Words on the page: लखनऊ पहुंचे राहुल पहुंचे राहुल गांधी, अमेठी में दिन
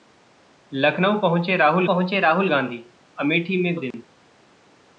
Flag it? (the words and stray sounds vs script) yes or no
yes